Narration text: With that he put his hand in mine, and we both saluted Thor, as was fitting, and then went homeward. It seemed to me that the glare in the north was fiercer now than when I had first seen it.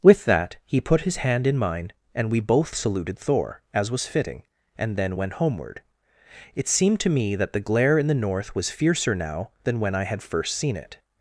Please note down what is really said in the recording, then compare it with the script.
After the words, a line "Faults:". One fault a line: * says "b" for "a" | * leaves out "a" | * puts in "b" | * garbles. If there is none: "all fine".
With that he put his hand in mine, and we both saluted Thor, as was fitting, and then went homeward. It seemed to me that the glare in the north was fiercer now than when I had first seen it.
Faults:
all fine